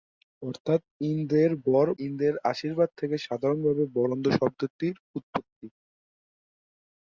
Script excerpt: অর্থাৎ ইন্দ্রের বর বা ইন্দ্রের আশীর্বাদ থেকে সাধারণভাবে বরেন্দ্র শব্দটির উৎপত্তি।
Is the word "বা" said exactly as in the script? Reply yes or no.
no